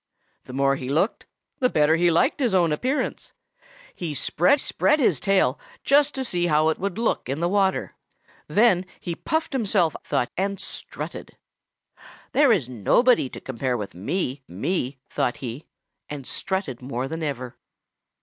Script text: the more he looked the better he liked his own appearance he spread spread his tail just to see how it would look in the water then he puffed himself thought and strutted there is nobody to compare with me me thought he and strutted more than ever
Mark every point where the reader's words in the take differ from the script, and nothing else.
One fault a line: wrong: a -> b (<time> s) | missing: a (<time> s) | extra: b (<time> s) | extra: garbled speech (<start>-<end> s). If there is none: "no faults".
no faults